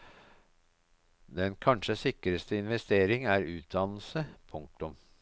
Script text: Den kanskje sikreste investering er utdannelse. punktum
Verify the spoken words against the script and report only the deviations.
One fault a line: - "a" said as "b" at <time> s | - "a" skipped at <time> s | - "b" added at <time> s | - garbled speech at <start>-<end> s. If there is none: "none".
none